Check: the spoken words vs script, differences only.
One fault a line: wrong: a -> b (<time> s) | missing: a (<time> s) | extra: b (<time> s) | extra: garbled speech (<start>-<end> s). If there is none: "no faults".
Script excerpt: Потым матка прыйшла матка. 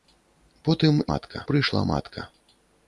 no faults